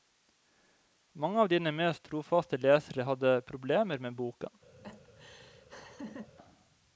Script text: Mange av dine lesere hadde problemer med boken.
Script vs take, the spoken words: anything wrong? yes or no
yes